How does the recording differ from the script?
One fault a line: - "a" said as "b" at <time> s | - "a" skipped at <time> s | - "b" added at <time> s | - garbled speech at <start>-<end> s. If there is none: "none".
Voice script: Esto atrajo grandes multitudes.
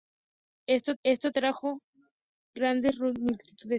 - "esto" added at 1.0 s